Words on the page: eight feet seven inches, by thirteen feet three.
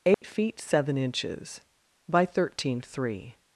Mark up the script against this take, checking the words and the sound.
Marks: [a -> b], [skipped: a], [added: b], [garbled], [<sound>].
eight [dropout] feet seven inches, by thirteen [skipped: feet] three.